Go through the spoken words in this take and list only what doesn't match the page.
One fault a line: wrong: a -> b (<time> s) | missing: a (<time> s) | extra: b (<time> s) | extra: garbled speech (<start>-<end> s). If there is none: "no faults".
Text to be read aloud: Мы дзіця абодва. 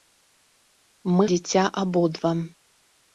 no faults